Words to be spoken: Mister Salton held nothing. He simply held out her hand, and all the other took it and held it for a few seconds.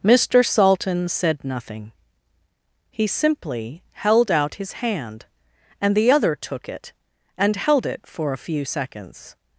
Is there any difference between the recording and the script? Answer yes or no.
yes